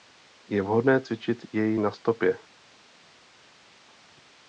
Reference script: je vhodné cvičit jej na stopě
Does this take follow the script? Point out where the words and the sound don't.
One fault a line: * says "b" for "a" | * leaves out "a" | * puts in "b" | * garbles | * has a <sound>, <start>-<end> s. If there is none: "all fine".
all fine